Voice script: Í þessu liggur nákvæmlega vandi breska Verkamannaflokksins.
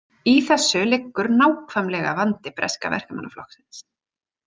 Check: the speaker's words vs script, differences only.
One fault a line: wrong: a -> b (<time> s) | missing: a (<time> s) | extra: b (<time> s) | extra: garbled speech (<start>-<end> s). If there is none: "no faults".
no faults